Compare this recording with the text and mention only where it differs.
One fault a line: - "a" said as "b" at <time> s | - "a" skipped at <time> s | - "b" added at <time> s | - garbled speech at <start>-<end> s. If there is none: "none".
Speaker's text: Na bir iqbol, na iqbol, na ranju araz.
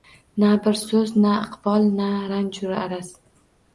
- "iqbol" said as "so'z" at 0.8 s